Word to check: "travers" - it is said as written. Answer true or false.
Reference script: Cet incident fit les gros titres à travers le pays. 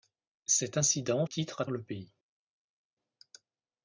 false